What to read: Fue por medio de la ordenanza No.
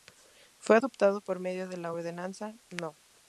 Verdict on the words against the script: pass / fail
fail